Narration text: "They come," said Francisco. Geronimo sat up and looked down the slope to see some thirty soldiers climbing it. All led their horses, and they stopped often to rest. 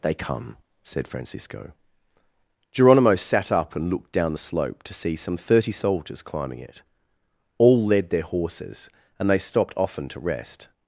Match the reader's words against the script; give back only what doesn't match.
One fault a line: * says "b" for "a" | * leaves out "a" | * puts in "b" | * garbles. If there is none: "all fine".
all fine